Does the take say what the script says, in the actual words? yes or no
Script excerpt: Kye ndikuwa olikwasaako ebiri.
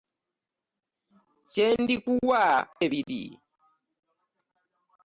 no